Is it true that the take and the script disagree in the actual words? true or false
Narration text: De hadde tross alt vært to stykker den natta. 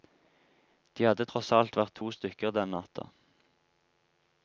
false